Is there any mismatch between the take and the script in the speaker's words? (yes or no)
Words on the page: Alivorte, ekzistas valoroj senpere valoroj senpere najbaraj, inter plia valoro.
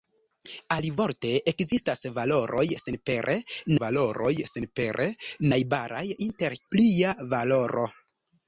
no